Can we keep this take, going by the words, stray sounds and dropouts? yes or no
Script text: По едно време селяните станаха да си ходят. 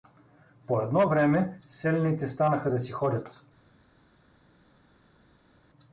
yes